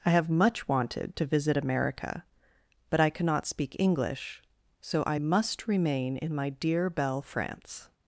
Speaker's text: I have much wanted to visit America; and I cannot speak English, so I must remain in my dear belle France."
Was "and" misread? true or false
true